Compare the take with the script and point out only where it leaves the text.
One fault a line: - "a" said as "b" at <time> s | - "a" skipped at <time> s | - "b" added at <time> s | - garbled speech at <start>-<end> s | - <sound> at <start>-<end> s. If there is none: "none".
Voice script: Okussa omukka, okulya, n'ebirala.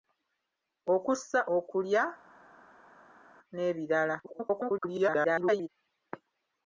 - "omukka" skipped at 1.4 s
- garbled speech at 4.2-5.7 s